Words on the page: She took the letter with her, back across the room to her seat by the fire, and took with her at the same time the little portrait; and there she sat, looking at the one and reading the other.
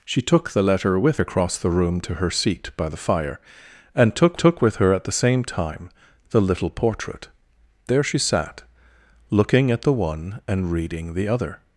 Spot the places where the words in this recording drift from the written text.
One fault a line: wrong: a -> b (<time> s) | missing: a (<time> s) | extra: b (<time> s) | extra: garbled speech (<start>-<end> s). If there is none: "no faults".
missing: her back (1.2 s)
extra: took (4.4 s)
missing: and (7.3 s)